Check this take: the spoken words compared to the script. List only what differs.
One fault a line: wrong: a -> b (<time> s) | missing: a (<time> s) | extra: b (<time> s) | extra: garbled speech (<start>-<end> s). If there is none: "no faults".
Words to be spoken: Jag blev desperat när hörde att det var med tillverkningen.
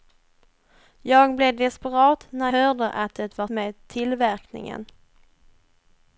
no faults